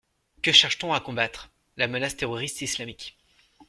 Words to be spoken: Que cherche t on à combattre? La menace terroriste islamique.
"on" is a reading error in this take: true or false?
false